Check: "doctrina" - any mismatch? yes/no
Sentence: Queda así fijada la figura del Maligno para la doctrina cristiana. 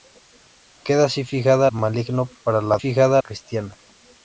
yes